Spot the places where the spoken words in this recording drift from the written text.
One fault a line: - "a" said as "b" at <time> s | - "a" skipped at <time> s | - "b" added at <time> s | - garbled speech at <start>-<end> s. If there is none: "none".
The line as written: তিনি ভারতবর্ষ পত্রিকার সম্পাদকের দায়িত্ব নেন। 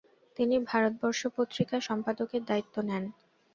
none